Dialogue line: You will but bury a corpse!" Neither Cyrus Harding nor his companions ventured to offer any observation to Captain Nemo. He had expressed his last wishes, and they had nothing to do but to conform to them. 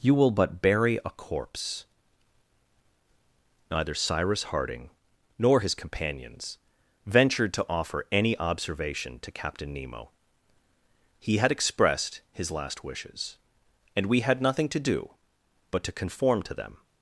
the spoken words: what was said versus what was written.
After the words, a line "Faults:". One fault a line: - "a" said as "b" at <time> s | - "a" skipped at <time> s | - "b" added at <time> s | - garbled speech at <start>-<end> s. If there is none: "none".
You will but bury a corpse!" Neither Cyrus Harding nor his companions ventured to offer any observation to Captain Nemo. He had expressed his last wishes, and we had nothing to do but to conform to them.
Faults:
- "they" said as "we" at 14.1 s